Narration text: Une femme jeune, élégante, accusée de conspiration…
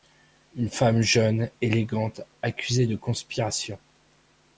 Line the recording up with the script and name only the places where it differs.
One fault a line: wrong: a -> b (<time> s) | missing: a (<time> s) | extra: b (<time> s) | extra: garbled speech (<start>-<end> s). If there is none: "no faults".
no faults